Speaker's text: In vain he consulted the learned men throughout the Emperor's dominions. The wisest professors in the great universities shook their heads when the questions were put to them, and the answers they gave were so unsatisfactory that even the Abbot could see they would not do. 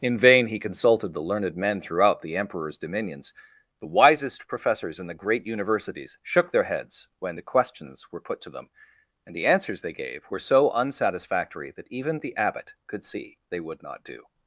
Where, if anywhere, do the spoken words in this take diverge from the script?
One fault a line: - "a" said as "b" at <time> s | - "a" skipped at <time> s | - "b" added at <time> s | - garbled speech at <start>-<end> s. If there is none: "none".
none